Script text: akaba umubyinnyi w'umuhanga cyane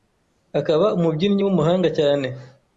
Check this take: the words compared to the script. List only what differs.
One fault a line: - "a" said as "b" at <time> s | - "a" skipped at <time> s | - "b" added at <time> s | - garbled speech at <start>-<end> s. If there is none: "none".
none